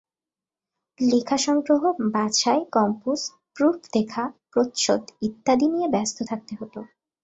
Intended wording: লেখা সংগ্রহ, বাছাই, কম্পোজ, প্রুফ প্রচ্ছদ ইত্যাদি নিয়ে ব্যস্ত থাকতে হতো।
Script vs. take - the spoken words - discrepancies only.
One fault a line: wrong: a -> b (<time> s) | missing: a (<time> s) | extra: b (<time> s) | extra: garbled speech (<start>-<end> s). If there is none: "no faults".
extra: দেখা (3.9 s)